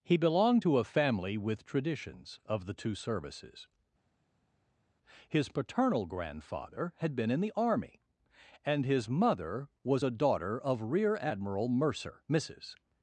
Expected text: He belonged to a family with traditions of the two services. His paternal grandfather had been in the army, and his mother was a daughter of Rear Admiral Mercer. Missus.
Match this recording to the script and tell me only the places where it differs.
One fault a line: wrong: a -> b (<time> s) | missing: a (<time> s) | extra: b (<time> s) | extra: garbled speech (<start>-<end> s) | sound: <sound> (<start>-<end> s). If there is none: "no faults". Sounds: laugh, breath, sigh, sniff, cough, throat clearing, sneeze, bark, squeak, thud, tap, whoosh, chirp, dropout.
no faults